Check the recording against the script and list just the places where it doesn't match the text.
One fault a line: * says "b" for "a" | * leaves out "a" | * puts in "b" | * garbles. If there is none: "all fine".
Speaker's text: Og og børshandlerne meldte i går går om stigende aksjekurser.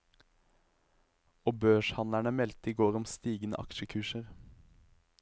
* leaves out "og"
* leaves out "går"